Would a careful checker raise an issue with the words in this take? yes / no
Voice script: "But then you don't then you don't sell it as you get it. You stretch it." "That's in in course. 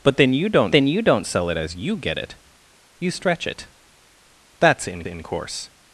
no